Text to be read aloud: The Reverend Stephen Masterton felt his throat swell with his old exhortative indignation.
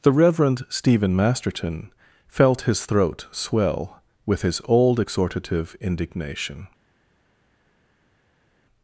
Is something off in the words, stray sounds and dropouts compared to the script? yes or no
no